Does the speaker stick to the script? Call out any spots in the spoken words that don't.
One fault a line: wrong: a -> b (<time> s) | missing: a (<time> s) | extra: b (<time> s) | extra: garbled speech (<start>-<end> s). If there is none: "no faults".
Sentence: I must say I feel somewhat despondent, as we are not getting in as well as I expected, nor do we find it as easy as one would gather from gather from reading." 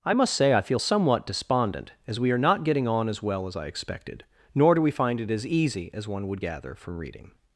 wrong: in -> on (2.9 s)
missing: gather from (7.0 s)